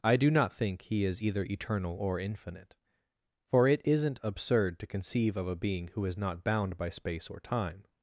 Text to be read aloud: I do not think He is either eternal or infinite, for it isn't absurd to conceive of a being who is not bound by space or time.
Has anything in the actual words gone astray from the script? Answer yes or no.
no